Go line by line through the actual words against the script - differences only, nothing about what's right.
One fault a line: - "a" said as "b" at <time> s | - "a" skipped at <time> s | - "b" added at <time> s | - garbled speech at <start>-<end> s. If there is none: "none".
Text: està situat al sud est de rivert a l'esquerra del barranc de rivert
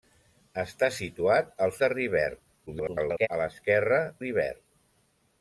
- "sud est" skipped at 1.7 s
- garbled speech at 2.7-3.3 s
- "del barranc de" skipped at 4.0 s